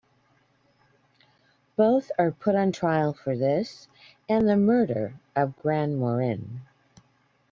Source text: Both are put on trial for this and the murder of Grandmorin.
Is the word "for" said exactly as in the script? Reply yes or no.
yes